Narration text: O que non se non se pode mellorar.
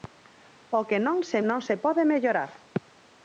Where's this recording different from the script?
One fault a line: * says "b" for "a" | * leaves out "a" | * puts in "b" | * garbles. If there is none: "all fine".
all fine